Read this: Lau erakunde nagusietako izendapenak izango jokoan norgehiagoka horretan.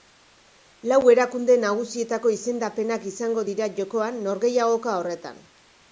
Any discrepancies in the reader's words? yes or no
yes